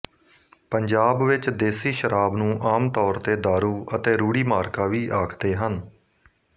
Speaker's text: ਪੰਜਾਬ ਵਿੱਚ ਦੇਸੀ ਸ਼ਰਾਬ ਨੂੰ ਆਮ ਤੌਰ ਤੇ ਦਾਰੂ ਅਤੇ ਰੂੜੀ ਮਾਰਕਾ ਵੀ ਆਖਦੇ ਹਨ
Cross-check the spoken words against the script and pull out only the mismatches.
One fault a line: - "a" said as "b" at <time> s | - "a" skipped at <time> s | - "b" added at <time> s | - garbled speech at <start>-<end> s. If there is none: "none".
none